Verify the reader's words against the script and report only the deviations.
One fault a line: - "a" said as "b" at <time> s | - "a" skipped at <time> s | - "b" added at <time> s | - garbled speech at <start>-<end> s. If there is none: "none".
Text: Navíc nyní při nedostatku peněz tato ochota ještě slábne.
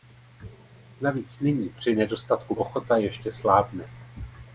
- "peněz tato" skipped at 2.5 s